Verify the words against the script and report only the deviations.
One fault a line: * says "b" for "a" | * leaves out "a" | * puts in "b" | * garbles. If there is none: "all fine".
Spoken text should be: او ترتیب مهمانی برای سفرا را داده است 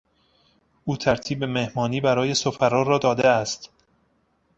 all fine